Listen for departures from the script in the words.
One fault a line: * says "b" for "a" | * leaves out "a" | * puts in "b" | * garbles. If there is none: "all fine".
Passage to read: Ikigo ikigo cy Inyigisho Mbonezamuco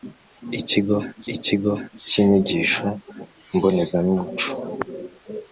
all fine